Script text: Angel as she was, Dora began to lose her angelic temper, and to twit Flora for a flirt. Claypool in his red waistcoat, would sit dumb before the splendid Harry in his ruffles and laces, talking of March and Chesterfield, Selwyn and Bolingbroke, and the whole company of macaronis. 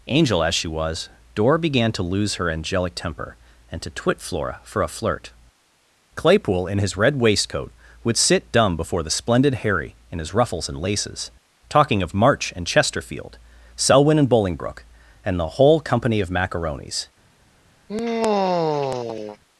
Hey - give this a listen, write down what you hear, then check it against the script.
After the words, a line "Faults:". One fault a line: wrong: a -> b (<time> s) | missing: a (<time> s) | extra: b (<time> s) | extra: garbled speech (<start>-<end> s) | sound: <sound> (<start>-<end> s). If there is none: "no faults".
Angel as she was, Dora began to lose her angelic temper, and to twit Flora for a flirt. Claypool in his red waistcoat, would sit dumb before the splendid Harry in his ruffles and laces, talking of March and Chesterfield, Selwyn and Bolingbroke, and the whole company of macaronis.
Faults:
sound: sigh (17.9-19.4 s)